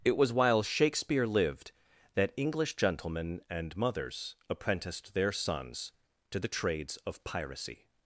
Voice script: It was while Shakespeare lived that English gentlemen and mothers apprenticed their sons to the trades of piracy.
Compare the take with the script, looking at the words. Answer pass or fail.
pass